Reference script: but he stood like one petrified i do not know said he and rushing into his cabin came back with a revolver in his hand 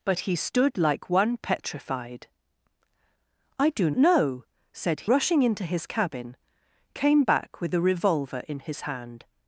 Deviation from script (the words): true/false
true